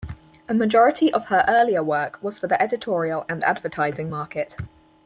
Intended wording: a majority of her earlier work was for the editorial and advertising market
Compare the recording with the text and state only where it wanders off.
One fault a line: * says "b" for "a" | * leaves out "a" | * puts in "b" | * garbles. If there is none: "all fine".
all fine